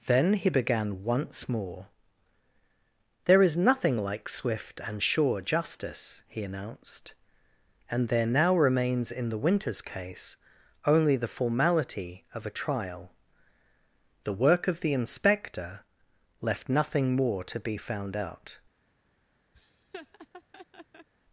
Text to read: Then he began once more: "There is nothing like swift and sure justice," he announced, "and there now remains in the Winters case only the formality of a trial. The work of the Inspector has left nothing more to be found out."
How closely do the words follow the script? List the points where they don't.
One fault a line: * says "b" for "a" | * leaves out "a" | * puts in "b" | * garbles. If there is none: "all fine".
* leaves out "has"